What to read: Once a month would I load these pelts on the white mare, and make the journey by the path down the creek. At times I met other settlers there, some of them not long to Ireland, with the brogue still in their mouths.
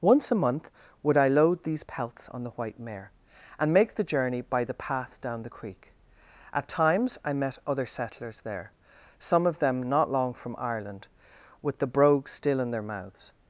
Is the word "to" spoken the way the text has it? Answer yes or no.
no